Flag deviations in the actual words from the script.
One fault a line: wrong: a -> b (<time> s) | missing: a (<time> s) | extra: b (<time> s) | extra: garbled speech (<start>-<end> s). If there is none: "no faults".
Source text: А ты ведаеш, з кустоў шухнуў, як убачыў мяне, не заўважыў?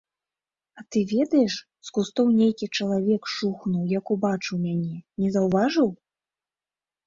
extra: нейкі чалавек (2.4 s)